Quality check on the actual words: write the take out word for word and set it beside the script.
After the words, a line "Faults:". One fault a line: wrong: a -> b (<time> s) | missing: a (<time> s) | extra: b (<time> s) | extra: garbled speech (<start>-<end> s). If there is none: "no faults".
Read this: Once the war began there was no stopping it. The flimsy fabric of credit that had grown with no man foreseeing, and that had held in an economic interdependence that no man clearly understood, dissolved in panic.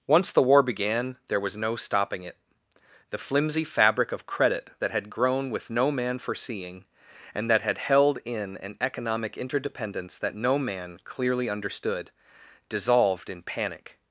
Once the war began there was no stopping it. The flimsy fabric of credit that had grown with no man foreseeing, and that had held in an economic interdependence that no man clearly understood, dissolved in panic.
Faults:
no faults